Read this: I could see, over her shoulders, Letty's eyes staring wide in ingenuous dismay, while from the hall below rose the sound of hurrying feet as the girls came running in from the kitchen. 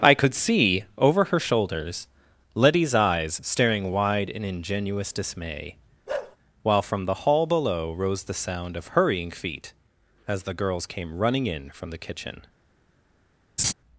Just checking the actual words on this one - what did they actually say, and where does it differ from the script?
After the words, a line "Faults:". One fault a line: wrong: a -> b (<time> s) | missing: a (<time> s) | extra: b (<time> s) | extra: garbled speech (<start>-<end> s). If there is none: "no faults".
I could see, over her shoulders, Letty's eyes staring wide in ingenuous dismay, while from the hall below rose the sound of hurrying feet as the girls came running in from the kitchen.
Faults:
no faults